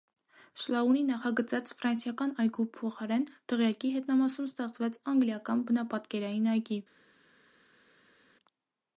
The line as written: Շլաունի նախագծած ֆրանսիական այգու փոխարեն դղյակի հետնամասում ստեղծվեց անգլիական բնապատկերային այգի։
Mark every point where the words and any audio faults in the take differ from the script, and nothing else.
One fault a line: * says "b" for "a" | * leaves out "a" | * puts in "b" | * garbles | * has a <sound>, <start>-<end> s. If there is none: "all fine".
all fine